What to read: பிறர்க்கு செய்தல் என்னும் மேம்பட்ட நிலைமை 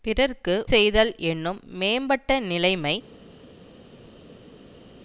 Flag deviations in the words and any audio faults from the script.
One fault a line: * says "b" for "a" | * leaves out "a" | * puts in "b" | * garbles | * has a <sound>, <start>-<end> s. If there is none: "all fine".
all fine